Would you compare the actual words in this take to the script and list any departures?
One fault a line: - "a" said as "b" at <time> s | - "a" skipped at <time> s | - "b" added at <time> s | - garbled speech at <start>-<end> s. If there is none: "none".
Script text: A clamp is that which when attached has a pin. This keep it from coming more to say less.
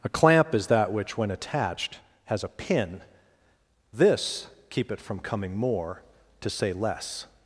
none